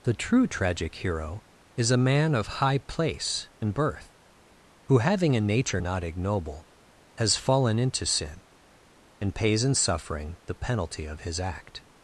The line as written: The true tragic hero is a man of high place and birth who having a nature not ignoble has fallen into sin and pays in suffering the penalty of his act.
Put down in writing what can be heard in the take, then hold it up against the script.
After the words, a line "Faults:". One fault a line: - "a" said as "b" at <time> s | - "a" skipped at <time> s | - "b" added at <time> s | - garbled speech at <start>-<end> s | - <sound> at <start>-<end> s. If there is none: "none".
The true tragic hero is a man of high place and birth who having a nature not ignoble has fallen into sin and pays in suffering the penalty of his act.
Faults:
none